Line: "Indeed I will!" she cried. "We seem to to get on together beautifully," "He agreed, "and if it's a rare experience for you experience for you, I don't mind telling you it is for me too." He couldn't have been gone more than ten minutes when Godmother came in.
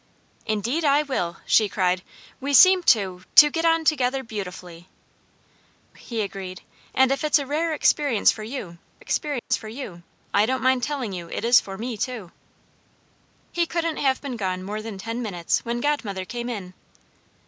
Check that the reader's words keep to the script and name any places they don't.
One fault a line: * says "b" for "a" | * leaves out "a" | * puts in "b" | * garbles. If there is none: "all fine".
all fine